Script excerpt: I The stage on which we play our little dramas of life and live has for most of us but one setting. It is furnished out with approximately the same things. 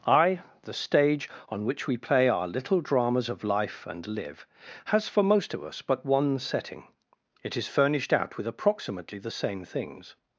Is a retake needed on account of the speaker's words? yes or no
no